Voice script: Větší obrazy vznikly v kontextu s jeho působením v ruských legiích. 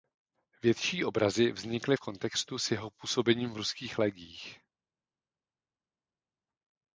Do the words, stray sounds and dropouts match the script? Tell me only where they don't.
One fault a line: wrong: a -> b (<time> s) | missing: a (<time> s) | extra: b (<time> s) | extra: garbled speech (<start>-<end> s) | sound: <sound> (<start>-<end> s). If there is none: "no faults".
no faults